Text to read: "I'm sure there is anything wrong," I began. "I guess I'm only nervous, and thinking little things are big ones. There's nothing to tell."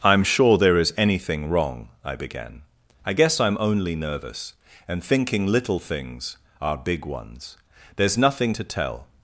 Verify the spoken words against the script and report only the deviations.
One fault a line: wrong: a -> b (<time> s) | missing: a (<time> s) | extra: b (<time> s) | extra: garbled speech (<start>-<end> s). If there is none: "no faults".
no faults